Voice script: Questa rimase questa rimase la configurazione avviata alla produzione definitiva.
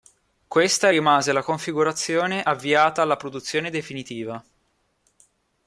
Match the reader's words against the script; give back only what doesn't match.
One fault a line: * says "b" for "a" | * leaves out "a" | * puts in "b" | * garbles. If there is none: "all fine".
* leaves out "questa rimase"